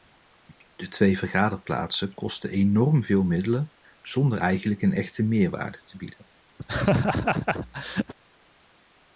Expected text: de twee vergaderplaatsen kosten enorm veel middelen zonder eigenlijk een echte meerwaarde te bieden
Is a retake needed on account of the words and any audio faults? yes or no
yes